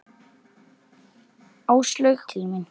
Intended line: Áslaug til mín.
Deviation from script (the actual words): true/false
false